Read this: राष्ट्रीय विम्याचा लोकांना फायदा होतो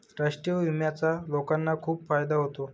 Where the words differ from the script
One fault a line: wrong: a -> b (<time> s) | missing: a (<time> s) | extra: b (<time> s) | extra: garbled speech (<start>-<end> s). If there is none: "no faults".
extra: खूप (1.8 s)